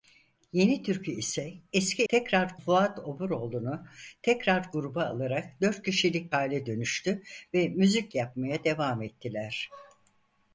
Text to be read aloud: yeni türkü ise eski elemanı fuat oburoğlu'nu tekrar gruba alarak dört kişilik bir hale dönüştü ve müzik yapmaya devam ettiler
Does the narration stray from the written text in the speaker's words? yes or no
yes